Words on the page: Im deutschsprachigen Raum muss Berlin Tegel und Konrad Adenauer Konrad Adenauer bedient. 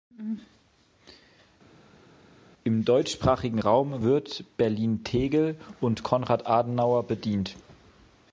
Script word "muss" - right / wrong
wrong